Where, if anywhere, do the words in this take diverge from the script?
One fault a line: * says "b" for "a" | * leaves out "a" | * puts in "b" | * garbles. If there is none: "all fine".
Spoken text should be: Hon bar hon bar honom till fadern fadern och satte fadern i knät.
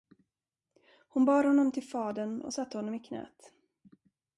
* leaves out "hon bar"
* leaves out "fadern"
* says "honom" for "fadern"